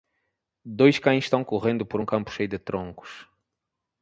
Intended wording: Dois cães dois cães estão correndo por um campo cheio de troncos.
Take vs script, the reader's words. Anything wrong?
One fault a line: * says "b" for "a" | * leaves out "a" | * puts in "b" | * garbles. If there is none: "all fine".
* leaves out "dois cães"